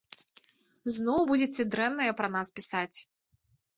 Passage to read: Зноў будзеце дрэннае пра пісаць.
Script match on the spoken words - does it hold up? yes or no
no